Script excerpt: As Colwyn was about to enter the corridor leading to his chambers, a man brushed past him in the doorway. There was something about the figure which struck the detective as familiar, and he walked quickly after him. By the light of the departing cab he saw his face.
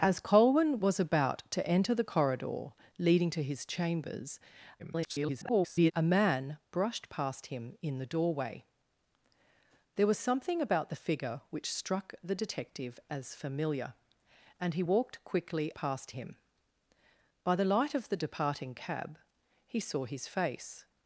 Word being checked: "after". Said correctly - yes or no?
no